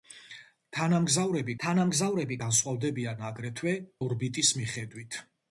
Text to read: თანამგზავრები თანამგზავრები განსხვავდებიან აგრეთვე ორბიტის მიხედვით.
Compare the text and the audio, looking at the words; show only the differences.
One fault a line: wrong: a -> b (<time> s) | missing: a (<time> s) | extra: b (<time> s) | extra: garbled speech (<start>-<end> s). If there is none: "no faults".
no faults